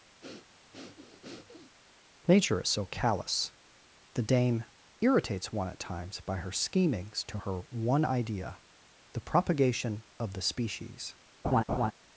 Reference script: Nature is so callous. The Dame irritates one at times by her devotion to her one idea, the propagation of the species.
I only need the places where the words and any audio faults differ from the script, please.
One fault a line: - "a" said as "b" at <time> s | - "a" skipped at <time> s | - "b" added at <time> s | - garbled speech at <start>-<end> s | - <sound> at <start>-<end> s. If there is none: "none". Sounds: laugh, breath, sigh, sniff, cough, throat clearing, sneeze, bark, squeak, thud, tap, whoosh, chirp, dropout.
- breath at 0.2-1.8 s
- "devotion" said as "schemings" at 6.5 s
- laugh at 11.4-11.9 s